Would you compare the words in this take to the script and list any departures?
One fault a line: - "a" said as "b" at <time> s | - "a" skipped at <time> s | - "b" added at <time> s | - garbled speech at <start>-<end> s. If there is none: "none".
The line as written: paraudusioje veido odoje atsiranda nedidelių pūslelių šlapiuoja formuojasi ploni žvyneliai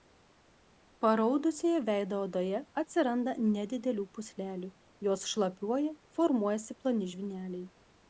- "jos" added at 5.1 s